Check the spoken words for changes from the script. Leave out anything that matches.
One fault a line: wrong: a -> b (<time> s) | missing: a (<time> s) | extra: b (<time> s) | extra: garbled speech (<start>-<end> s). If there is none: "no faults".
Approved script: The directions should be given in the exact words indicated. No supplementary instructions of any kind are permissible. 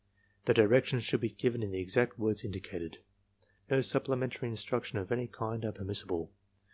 no faults